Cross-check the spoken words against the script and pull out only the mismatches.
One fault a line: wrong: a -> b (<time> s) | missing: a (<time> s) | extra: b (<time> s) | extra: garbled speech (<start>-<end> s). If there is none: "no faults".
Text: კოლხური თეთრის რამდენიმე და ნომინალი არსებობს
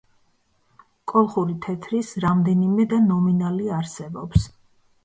no faults